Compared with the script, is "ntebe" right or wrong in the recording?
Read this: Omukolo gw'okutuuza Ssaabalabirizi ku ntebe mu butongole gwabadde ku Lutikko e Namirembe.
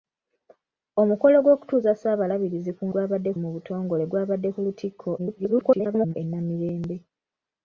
wrong